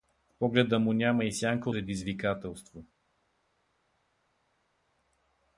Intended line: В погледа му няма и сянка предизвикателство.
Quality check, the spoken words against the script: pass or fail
pass